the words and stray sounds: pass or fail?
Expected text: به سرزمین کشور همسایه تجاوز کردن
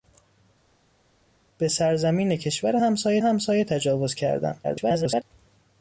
fail